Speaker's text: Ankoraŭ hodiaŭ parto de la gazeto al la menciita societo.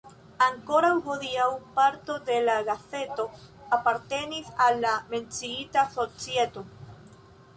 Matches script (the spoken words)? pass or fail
fail